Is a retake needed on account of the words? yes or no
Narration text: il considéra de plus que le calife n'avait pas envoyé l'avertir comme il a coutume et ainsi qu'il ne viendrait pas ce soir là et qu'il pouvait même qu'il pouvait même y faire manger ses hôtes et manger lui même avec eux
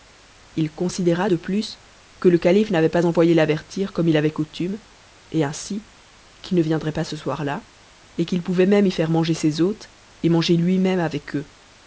yes